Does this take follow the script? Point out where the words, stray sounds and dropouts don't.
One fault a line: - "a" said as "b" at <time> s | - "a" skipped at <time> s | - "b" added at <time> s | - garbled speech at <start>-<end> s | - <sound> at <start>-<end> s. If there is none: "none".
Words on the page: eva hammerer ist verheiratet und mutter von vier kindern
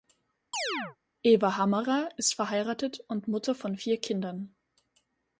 - chirp at 0.5-1.0 s